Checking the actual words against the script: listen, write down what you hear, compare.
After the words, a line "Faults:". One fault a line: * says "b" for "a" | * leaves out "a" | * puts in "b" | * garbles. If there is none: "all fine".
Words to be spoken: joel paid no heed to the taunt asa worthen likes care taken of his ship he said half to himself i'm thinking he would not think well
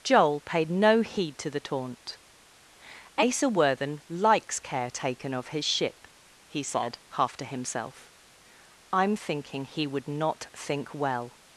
joel paid no heed to the taunt asa worthen likes care taken of his ship he said half to himself i'm thinking he would not think well
Faults:
all fine